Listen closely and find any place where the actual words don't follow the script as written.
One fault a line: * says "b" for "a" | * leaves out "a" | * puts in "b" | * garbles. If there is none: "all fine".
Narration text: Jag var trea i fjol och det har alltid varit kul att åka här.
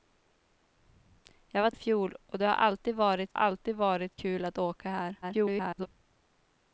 * leaves out "trea"
* puts in "alltid varit"
* garbles